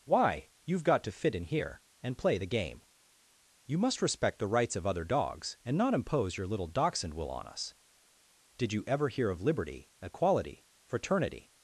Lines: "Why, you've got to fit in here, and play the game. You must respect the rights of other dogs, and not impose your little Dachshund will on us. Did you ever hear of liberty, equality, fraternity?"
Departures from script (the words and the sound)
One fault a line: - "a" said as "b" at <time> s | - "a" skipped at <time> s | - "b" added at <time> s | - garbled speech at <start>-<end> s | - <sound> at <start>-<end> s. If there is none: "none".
none